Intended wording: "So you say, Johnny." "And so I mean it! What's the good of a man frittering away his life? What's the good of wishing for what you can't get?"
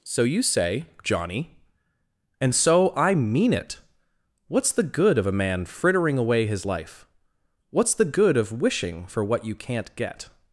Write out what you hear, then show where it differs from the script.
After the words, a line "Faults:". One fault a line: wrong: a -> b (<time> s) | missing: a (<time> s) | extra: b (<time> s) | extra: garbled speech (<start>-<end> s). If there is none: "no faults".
"So you say, Johnny." "And so I mean it! What's the good of a man frittering away his life? What's the good of wishing for what you can't get?"
Faults:
no faults